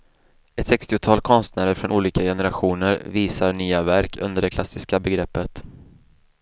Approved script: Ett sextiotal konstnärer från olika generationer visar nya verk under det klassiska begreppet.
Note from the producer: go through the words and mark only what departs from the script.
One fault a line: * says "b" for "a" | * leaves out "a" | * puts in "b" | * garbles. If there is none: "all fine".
all fine